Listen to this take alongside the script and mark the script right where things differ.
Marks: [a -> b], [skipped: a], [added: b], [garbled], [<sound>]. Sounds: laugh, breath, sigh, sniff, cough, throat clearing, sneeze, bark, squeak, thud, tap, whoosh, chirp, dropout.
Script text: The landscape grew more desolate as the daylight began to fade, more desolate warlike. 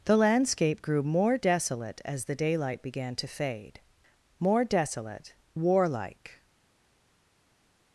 The landscape grew more desolate as the daylight began to fade, more desolate warlike.